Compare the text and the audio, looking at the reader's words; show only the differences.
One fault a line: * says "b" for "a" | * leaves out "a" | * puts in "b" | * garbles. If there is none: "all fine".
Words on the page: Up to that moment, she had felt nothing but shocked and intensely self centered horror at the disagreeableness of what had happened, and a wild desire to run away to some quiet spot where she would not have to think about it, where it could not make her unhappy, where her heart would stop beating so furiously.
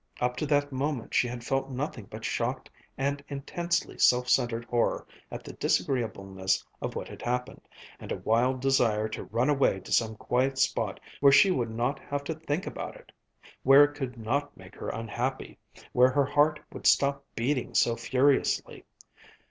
all fine